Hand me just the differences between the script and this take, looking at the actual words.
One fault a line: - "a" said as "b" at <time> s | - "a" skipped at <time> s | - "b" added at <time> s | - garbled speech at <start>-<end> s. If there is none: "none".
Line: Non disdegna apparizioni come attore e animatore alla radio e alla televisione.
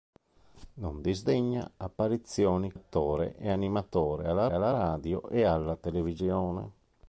- "come" skipped at 2.7 s
- "alla" added at 4.5 s